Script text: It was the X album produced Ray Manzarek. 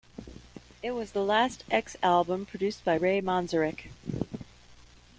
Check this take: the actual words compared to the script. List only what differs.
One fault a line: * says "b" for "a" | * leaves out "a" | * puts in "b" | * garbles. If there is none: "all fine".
* puts in "last"
* puts in "by"